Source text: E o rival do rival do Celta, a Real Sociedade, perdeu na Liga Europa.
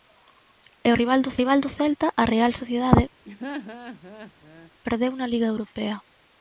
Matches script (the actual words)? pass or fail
pass